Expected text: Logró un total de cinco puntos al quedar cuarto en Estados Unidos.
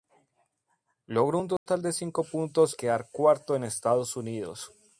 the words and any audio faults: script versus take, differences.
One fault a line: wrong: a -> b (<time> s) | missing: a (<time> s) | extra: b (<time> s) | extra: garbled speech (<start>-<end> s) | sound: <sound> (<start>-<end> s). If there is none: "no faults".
sound: dropout (1.6-1.7 s)
missing: al (2.8 s)